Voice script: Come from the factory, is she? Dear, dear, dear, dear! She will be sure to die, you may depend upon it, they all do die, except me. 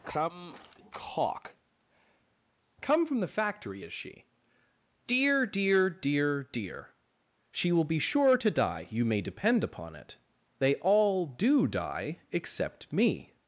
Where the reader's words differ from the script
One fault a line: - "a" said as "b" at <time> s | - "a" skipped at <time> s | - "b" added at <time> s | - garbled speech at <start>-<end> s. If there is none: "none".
- "cock come" added at 0.9 s